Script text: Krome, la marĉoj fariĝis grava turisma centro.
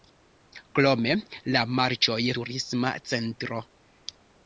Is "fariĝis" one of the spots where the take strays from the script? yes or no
yes